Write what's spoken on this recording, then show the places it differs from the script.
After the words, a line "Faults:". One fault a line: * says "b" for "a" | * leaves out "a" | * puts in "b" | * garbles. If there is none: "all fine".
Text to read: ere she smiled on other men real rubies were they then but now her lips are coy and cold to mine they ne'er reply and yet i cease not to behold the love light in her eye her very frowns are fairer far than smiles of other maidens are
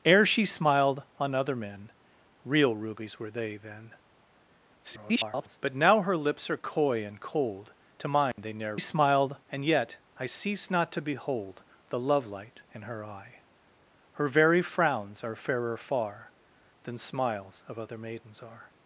ere she smiled on other men real rubies were they then [garbled] but now her lips are coy and cold to mine they ne'er smiled and yet i cease not to behold the love light in her eye her very frowns are fairer far than smiles of other maidens are
Faults:
* garbles
* says "smiled" for "reply"